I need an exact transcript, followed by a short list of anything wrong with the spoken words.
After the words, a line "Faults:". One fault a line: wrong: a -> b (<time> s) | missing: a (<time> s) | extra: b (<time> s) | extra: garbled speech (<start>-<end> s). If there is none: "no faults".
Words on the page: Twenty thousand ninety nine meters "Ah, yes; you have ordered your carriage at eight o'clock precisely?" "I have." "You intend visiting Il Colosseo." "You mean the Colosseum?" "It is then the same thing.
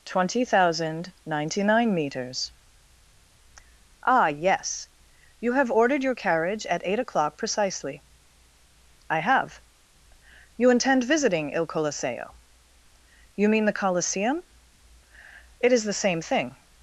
Twenty thousand ninety nine meters "Ah, yes; you have ordered your carriage at eight o'clock precisely?" "I have." "You intend visiting Il Colosseo." "You mean the Colosseum?" "It is the same thing.
Faults:
missing: then (15.8 s)